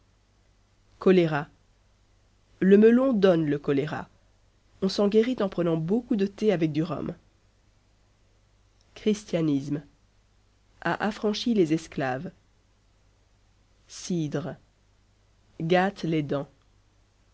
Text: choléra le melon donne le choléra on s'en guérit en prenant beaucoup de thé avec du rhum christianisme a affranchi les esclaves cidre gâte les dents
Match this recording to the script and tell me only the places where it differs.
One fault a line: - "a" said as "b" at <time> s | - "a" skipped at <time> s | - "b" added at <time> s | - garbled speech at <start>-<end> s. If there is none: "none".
none